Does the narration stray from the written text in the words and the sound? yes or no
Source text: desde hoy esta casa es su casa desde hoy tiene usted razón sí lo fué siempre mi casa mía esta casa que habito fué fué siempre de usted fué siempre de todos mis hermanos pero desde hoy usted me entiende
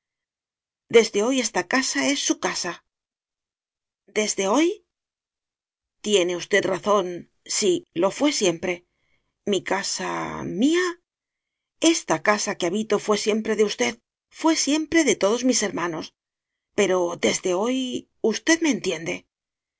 yes